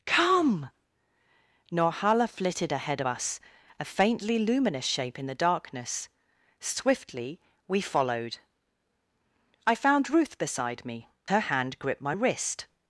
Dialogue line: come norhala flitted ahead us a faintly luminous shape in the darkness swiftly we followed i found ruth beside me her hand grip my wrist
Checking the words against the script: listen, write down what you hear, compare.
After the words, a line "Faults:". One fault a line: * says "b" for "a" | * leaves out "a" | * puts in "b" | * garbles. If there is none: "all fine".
come norhala flitted ahead us a faintly luminous shape in the darkness swiftly we followed i found ruth beside me her hand grip my wrist
Faults:
all fine